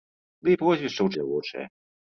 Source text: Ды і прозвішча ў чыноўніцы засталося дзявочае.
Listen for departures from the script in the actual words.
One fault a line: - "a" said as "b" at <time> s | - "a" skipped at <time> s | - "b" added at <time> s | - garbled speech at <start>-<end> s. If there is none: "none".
- "чыноўніцы засталося" skipped at 1.1 s